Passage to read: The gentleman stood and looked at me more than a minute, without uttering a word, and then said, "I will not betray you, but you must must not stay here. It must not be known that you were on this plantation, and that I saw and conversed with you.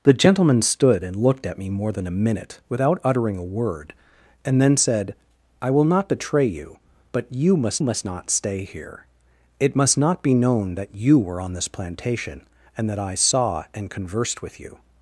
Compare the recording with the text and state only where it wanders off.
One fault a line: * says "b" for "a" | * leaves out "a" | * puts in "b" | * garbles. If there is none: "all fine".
all fine